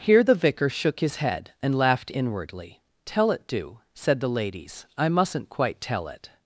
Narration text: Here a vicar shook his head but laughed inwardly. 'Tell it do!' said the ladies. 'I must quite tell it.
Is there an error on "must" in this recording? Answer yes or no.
yes